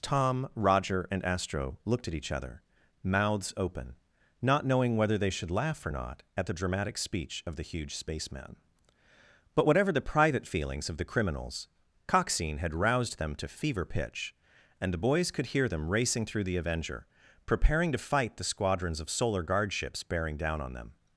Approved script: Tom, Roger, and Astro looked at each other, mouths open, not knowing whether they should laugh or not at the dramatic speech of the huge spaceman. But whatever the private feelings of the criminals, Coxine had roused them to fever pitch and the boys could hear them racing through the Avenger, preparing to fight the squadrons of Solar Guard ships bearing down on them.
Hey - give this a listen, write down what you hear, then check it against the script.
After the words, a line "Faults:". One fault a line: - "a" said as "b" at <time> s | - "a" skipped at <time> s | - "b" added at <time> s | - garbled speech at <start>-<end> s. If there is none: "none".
Tom, Roger, and Astro looked at each other, mouths open, not knowing whether they should laugh or not at the dramatic speech of the huge spaceman. But whatever the private feelings of the criminals, Coxine had roused them to fever pitch and the boys could hear them racing through the Avenger, preparing to fight the squadrons of Solar Guard ships bearing down on them.
Faults:
none